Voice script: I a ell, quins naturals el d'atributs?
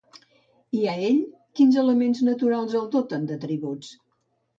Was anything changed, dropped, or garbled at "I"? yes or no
no